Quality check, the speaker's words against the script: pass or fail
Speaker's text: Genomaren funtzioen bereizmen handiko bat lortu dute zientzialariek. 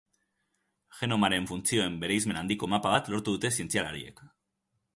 fail